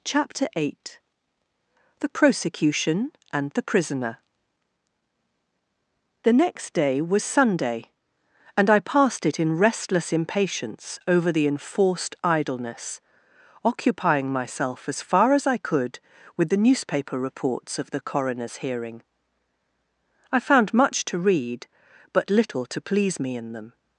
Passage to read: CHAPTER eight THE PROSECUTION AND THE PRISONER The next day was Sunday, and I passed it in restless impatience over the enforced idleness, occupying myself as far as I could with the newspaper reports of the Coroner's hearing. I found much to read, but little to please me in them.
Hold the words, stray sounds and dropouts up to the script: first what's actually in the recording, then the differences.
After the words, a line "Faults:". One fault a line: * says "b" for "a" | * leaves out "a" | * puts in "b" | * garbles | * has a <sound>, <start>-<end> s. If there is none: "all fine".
CHAPTER eight THE PROSECUTION AND THE PRISONER The next day was Sunday, and I passed it in restless impatience over the enforced idleness, occupying myself as far as I could with the newspaper reports of the Coroner's hearing. I found much to read, but little to please me in them.
Faults:
all fine